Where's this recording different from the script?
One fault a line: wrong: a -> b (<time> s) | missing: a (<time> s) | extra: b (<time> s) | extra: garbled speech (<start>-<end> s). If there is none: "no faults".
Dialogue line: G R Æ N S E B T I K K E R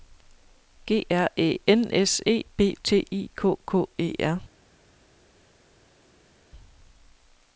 no faults